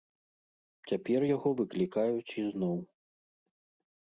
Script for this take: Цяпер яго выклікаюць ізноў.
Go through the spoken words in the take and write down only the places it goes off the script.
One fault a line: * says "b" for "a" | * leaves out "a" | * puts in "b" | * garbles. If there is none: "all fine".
all fine